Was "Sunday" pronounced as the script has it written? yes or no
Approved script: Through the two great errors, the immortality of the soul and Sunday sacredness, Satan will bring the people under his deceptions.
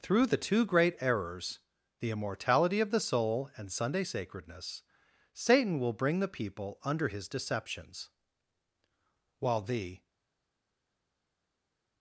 yes